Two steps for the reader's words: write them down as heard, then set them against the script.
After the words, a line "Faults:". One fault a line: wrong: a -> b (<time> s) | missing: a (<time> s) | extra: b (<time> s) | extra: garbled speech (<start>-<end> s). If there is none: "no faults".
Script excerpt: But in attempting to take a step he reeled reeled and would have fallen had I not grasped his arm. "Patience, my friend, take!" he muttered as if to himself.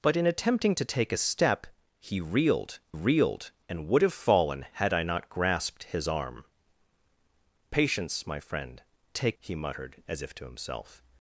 But in attempting to take a step he reeled reeled and would have fallen had I not grasped his arm. "Patience, my friend, take!" he muttered as if to himself.
Faults:
no faults